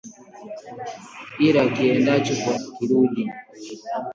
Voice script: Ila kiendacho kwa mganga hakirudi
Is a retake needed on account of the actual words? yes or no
yes